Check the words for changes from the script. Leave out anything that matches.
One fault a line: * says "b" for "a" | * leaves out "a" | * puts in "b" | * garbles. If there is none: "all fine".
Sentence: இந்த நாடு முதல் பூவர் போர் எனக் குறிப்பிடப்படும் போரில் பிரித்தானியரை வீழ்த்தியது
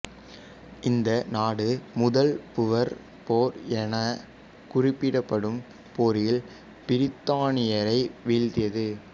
all fine